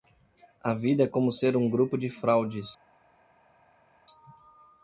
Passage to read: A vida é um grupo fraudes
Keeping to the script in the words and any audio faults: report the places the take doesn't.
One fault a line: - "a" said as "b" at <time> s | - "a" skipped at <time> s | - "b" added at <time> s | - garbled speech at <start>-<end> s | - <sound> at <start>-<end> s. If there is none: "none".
- "como ser" added at 1.1 s
- "de" added at 1.9 s